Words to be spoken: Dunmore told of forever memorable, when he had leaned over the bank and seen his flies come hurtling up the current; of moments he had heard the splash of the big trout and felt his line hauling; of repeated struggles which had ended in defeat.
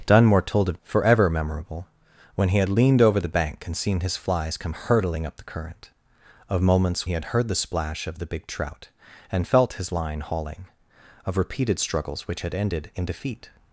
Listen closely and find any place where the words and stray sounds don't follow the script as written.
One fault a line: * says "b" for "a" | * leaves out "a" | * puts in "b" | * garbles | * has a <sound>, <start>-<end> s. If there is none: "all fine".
all fine